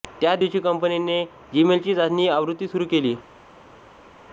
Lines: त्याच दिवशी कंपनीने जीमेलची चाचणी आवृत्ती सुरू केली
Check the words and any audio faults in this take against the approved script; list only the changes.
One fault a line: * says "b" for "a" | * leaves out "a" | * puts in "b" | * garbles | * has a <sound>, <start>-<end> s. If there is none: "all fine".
all fine